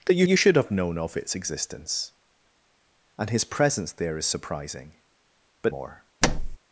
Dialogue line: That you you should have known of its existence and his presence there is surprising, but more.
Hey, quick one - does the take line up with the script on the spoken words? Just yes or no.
yes